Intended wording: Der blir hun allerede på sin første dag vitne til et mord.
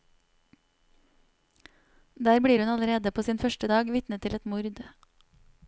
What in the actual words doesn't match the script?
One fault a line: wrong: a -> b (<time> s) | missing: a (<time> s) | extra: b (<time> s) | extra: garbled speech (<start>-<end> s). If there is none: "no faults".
no faults